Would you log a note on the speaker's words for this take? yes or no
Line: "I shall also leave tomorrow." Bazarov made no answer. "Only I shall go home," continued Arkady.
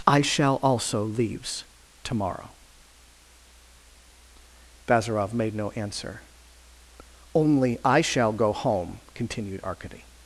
yes